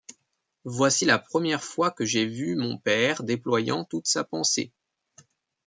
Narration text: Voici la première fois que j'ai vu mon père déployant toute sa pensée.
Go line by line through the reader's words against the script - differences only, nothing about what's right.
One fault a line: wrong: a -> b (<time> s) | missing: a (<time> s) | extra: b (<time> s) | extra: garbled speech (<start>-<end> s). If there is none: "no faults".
no faults